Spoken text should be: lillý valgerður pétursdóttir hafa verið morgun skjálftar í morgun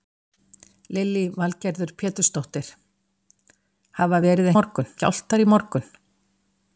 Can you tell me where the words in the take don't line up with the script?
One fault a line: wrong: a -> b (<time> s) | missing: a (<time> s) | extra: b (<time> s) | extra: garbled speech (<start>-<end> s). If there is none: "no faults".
no faults